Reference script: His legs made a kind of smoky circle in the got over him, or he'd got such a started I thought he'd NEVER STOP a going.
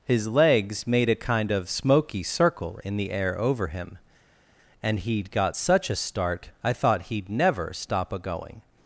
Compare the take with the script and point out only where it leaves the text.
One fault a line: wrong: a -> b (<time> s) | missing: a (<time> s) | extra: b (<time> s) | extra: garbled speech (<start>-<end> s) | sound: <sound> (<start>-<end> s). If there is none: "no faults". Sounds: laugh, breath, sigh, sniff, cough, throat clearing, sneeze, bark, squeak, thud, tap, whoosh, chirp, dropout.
wrong: got -> air (3.1 s)
wrong: or -> and (4.8 s)
wrong: started -> start (6.0 s)